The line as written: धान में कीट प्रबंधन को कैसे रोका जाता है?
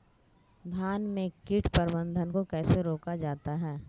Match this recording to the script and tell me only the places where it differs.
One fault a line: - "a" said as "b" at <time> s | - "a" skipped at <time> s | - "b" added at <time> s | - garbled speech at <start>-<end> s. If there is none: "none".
none